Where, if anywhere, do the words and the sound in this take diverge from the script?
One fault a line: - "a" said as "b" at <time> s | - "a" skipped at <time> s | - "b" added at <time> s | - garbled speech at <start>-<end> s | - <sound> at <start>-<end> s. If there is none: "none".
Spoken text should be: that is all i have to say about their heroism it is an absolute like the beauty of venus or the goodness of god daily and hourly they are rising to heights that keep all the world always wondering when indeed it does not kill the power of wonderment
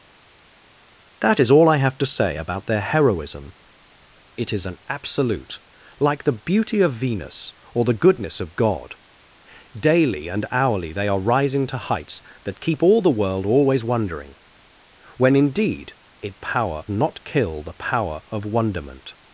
- "does" said as "power" at 16.4 s